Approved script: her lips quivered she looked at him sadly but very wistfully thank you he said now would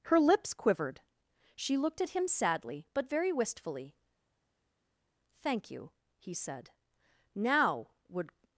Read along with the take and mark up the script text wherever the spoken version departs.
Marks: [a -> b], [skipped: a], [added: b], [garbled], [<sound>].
her lips quivered she looked at him sadly but very wistfully thank you he said now would